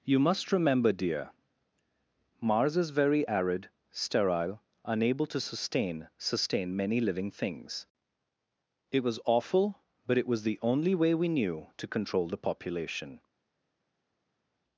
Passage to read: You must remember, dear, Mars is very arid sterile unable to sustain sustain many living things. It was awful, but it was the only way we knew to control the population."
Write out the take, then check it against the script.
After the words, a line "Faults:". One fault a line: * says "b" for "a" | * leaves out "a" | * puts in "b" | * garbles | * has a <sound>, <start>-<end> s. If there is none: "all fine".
You must remember, dear, Mars is very arid sterile unable to sustain sustain many living things. It was awful, but it was the only way we knew to control the population."
Faults:
all fine